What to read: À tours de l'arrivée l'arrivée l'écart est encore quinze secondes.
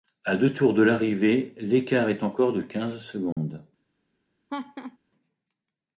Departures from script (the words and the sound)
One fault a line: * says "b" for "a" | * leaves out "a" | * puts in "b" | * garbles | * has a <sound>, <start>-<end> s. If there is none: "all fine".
* puts in "deux"
* leaves out "l'arrivée"
* puts in "de"
* has a dropout, 3.3-3.4 s
* has a laugh, 4.5-5.0 s